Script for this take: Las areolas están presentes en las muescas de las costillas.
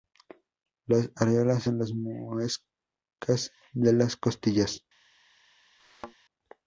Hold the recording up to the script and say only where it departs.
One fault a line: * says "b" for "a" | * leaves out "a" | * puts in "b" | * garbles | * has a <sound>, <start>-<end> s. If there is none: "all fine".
* leaves out "están presentes"
* has a thud, 5.8-6.1 s